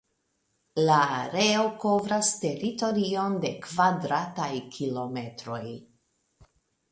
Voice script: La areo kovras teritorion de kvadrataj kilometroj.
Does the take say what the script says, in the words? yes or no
yes